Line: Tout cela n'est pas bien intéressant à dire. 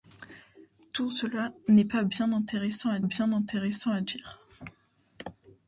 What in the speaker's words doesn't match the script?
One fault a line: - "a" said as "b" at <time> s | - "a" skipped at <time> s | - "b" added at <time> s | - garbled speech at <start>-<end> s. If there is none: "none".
- "bien intéressant à" added at 3.0 s